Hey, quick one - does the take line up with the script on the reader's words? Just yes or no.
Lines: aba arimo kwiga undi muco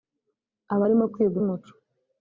no